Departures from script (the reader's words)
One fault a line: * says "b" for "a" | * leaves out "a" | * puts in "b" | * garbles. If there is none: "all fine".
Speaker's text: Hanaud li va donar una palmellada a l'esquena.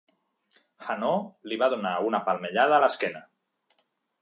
all fine